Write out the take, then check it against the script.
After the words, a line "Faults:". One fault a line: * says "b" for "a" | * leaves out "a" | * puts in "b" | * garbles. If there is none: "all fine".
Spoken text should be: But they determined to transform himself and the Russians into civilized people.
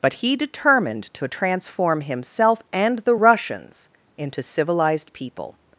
But he determined to transform himself and the Russians into civilized people.
Faults:
* says "he" for "they"